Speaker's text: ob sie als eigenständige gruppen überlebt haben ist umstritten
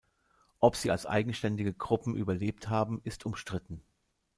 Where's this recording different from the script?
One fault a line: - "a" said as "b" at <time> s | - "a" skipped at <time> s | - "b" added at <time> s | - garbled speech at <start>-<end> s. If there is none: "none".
none